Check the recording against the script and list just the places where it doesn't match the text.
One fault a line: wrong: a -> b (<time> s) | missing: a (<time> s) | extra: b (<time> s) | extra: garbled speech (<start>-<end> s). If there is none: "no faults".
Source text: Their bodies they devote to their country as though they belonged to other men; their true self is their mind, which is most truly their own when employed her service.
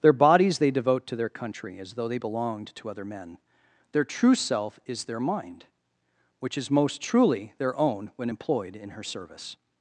extra: in (8.8 s)